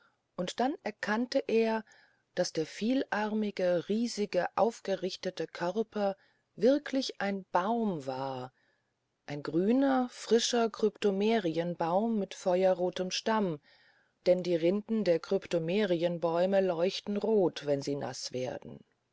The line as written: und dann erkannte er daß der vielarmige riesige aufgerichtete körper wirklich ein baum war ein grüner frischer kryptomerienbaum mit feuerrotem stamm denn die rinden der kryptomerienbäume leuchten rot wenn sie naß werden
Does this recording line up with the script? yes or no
yes